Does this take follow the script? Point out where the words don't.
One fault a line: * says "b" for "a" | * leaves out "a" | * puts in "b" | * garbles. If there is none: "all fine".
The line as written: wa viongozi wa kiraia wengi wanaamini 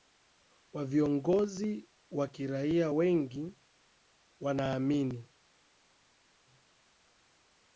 all fine